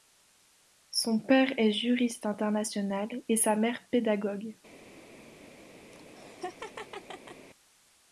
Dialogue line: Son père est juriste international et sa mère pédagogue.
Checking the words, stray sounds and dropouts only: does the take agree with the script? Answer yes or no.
no